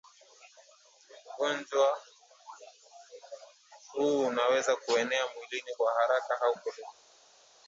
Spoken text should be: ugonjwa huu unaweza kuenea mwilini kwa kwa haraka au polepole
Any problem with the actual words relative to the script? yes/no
yes